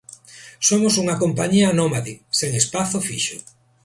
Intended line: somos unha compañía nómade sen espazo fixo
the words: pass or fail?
pass